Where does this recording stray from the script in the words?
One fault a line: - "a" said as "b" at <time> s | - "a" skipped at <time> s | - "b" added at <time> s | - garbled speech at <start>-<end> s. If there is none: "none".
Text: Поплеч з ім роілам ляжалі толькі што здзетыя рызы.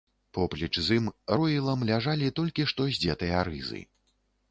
none